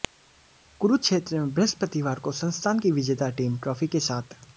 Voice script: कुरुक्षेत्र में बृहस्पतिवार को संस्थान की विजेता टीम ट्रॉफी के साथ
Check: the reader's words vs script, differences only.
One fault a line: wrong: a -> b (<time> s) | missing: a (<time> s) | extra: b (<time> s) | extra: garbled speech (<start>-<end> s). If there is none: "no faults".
no faults